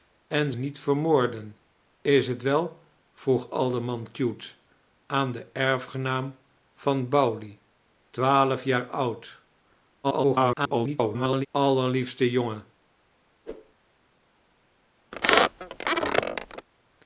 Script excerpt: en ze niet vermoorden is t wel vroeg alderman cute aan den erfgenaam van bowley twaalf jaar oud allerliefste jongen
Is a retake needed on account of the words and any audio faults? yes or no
yes